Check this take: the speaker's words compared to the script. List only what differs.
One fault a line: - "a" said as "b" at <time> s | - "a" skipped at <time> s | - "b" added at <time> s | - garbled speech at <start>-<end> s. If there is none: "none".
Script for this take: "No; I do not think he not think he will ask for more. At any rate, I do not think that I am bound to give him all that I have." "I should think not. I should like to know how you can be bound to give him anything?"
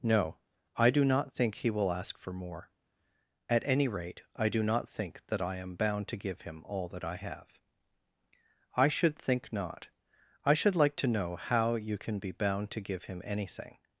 - "not think he" skipped at 1.7 s